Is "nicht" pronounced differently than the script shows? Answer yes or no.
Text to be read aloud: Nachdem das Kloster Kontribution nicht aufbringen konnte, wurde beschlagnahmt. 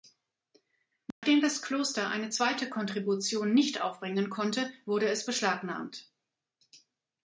no